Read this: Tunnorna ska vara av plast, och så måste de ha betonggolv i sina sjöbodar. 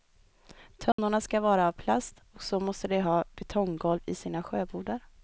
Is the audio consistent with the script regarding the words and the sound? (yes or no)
no